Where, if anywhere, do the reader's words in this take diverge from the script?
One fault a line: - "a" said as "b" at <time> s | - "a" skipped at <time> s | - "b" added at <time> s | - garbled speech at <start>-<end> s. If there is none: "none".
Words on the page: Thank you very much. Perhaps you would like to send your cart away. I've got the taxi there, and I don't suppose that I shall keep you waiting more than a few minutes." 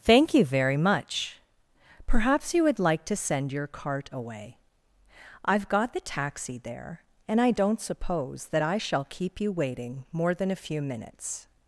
none